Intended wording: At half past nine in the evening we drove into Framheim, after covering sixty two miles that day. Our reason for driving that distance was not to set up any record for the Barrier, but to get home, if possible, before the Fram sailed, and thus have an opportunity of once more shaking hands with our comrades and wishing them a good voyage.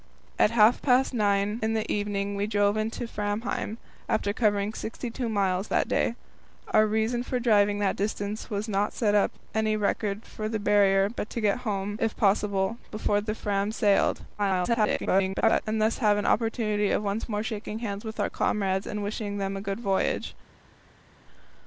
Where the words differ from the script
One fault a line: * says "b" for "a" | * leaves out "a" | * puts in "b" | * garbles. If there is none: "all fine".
* garbles